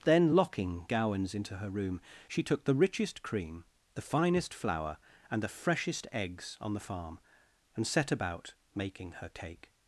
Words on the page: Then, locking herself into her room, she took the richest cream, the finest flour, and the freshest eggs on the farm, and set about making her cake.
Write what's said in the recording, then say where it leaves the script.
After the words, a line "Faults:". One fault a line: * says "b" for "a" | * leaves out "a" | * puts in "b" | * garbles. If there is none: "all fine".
Then, locking gowans into her room, she took the richest cream, the finest flour, and the freshest eggs on the farm, and set about making her cake.
Faults:
* says "gowans" for "herself"